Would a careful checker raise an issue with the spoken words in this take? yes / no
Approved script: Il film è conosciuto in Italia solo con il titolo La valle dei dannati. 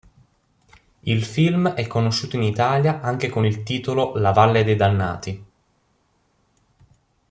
yes